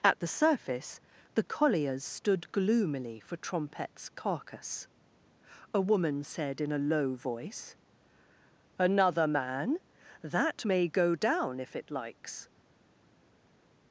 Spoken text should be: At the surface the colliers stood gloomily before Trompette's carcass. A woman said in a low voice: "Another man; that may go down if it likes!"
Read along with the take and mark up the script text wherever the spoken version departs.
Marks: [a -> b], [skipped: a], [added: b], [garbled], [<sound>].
At the surface the colliers stood gloomily [before -> for] Trompette's carcass. A woman said in a low voice: "Another man; that may go down if it likes!"